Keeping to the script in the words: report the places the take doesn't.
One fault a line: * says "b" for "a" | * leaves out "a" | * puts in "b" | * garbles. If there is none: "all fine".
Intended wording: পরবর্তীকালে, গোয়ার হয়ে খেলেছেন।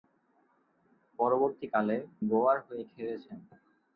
all fine